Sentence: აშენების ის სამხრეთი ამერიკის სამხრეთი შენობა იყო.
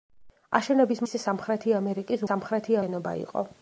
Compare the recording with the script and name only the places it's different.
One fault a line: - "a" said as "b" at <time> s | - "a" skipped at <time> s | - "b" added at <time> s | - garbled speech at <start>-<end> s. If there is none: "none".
none